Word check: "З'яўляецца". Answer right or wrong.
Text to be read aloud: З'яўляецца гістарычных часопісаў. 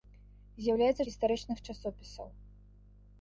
right